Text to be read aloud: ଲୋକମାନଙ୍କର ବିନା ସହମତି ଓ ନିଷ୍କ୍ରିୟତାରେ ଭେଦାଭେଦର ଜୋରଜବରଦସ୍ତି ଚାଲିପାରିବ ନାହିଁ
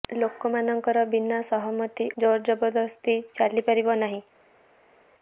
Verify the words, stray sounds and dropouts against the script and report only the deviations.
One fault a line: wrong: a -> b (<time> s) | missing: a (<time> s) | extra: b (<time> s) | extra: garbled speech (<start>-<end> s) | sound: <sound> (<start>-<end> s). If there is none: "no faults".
missing: ଓ ନିଷ୍କ୍ରିୟତାରେ ଭେଦାଭେଦର (2.1 s)